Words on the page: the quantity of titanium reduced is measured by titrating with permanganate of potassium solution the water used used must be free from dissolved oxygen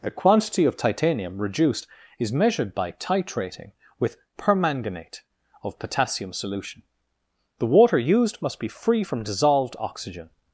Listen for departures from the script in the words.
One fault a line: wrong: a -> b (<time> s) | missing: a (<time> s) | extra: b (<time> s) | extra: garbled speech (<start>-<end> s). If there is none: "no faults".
missing: used (8.4 s)